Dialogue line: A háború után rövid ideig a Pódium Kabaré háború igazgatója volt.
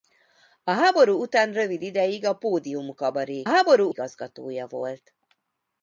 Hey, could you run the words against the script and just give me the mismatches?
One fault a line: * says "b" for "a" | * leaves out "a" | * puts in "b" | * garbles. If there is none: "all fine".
all fine